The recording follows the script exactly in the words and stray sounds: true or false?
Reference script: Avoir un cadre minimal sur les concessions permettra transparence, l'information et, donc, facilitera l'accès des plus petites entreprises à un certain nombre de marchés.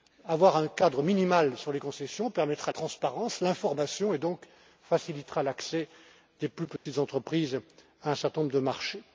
false